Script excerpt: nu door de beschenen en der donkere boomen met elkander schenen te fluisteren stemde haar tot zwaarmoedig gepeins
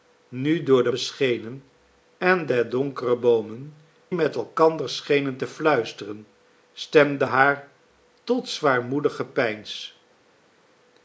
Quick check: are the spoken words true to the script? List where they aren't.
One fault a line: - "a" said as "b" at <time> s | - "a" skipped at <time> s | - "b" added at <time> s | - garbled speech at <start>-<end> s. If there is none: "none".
none